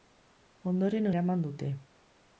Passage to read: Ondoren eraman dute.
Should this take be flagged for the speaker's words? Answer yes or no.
no